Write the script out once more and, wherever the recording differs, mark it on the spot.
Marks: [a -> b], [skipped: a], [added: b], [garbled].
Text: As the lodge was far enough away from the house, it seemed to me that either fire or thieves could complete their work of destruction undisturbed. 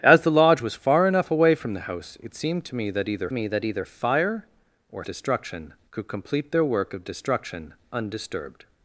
As the lodge was far enough away from the house, it seemed to me that either [added: me that either] fire or [thieves -> destruction] could complete their work of destruction undisturbed.